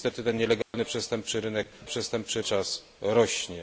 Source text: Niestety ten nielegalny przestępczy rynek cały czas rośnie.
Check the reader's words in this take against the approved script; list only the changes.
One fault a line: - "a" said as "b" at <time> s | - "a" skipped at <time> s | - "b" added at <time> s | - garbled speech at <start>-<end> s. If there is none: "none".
- "cały" said as "przestępczy" at 1.9 s